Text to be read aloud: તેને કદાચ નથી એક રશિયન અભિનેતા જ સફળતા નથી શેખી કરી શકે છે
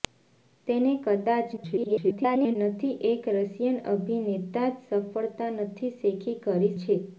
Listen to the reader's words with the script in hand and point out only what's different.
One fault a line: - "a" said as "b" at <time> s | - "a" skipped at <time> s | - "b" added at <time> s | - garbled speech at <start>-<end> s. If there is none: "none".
- garbled speech at 1.6-2.6 s
- "શકે" skipped at 6.7 s